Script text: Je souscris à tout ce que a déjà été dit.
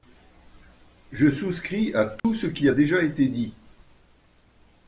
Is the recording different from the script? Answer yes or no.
yes